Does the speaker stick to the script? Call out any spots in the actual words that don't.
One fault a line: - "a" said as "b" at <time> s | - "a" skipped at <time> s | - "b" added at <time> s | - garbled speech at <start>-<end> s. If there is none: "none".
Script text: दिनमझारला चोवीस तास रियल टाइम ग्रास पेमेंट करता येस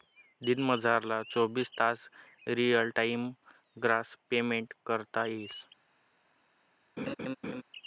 none